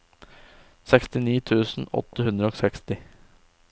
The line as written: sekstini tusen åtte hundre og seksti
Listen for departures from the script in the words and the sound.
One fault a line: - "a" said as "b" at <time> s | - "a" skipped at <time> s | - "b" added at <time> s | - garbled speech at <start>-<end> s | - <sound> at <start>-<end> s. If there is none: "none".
none